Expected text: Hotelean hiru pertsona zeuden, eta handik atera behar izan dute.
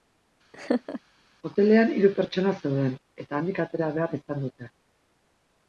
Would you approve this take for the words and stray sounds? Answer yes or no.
no